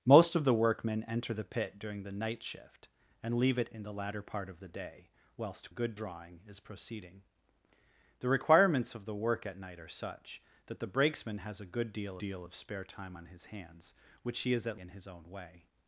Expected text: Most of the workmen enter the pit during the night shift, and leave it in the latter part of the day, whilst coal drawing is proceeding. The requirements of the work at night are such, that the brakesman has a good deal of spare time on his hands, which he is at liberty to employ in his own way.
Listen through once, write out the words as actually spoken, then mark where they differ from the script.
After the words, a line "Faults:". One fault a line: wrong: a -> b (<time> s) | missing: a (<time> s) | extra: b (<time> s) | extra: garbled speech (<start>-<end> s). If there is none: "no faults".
Most of the workmen enter the pit during the night shift, and leave it in the latter part of the day, whilst good drawing is proceeding. The requirements of the work at night are such, that the brakesman has a good deal deal of spare time on his hands, which he is at in his own way.
Faults:
wrong: coal -> good (5.7 s)
extra: deal (12.2 s)
missing: liberty to employ (14.8 s)